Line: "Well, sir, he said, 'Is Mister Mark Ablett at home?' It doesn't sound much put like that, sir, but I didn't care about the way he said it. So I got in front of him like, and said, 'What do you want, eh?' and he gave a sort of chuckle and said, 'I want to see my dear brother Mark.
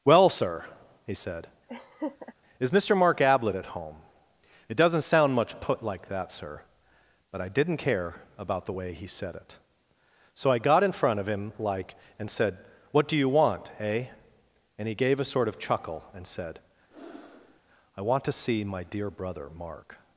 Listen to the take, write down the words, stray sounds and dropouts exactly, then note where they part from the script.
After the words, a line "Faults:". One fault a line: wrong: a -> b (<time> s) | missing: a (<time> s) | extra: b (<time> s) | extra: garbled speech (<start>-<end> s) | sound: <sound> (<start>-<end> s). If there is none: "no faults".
"Well, sir, he said, 'Is Mister Mark Ablett at home?' It doesn't sound much put like that, sir, but I didn't care about the way he said it. So I got in front of him like, and said, 'What do you want, eh?' and he gave a sort of chuckle and said, 'I want to see my dear brother Mark.
Faults:
sound: laugh (1.7-2.3 s)
sound: breath (16.9-17.6 s)